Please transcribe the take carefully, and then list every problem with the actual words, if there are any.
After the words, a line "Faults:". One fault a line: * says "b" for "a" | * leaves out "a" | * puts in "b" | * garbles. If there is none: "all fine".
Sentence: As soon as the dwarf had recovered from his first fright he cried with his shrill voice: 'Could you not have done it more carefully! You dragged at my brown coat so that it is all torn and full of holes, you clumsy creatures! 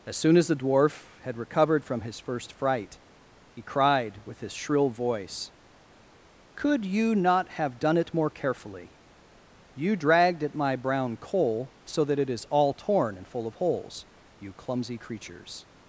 As soon as the dwarf had recovered from his first fright he cried with his shrill voice: 'Could you not have done it more carefully! You dragged at my brown coal so that it is all torn and full of holes, you clumsy creatures!
Faults:
* says "coal" for "coat"